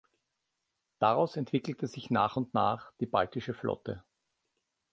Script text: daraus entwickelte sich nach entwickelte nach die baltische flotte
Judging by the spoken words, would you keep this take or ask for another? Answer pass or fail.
fail